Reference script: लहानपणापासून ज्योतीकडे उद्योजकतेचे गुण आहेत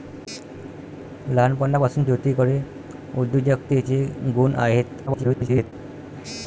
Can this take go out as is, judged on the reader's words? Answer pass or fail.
fail